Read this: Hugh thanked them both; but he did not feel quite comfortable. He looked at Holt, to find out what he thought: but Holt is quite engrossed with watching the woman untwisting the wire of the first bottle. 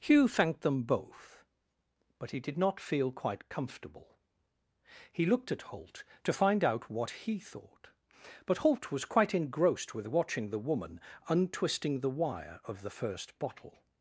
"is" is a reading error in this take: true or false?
true